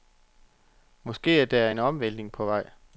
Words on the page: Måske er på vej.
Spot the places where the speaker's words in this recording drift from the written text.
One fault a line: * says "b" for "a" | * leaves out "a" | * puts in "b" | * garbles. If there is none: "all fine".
* puts in "der en omvæltning"